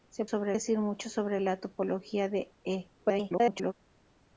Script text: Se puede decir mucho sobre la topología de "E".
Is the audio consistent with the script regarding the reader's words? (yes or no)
no